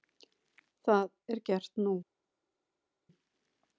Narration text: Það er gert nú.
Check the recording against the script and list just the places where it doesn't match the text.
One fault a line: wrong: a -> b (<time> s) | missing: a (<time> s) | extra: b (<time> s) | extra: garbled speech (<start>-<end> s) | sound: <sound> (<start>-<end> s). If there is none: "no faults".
no faults